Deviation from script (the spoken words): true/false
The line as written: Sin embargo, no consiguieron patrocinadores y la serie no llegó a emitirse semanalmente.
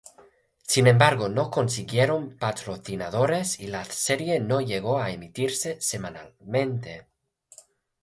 false